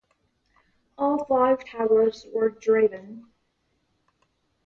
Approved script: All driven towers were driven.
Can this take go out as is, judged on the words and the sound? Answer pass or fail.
fail